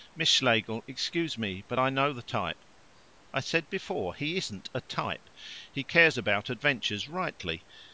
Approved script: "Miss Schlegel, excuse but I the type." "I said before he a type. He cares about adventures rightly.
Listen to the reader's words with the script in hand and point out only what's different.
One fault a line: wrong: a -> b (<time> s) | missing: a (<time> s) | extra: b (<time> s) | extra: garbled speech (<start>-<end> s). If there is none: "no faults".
extra: me (1.4 s)
extra: know (1.9 s)
extra: isn't (4.4 s)